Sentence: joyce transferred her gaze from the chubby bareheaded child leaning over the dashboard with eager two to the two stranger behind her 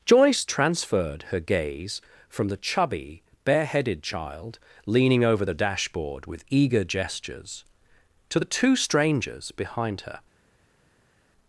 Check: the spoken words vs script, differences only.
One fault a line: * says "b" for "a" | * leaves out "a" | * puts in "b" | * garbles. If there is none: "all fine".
* says "gestures" for "two"
* says "strangers" for "stranger"